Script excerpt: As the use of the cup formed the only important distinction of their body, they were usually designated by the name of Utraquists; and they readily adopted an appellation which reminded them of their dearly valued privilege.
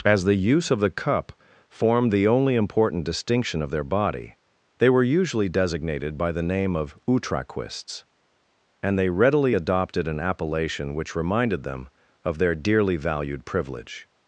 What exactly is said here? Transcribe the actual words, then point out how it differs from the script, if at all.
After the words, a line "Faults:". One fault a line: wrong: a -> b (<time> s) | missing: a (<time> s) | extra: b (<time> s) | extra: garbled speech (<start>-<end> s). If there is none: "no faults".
As the use of the cup formed the only important distinction of their body, they were usually designated by the name of Utraquists; and they readily adopted an appellation which reminded them of their dearly valued privilege.
Faults:
no faults